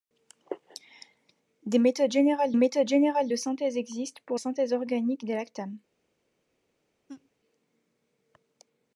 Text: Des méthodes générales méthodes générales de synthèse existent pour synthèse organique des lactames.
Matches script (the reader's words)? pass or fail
pass